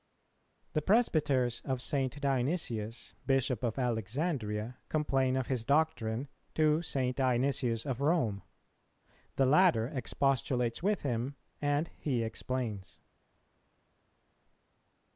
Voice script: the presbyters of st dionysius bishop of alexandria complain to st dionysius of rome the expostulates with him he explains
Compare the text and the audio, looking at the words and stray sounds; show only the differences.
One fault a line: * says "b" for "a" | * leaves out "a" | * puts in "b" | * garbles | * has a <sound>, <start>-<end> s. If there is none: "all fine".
* puts in "of his doctrine"
* puts in "latter"
* puts in "and"